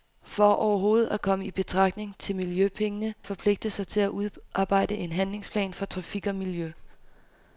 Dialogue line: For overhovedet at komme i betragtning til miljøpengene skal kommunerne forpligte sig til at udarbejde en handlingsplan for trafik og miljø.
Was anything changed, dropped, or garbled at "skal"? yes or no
yes